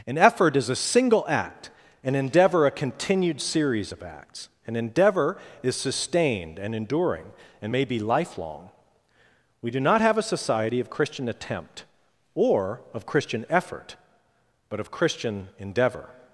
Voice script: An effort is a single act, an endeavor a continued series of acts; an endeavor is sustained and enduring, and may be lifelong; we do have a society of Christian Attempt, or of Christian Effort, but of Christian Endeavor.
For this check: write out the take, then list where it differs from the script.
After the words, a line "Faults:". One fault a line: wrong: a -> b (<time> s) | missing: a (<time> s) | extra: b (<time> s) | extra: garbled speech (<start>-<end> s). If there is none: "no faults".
An effort is a single act, an endeavor a continued series of acts; an endeavor is sustained and enduring, and may be lifelong; we do not have a society of Christian Attempt, or of Christian Effort, but of Christian Endeavor.
Faults:
extra: not (9.8 s)